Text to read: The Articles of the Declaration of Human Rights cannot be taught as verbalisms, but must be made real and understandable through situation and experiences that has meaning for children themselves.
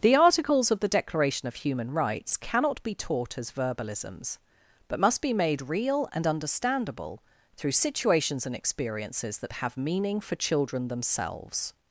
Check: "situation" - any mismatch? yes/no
yes